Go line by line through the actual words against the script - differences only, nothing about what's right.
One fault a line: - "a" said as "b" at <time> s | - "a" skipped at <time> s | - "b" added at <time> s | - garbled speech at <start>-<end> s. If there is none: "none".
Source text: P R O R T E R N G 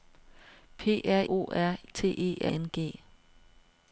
none